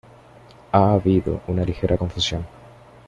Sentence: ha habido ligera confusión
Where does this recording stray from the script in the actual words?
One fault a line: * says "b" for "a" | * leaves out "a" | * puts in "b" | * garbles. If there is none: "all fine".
* puts in "una"